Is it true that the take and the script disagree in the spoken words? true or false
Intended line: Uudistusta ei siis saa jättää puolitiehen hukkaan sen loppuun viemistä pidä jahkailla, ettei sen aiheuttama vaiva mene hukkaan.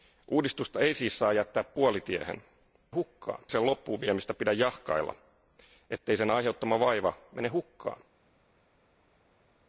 false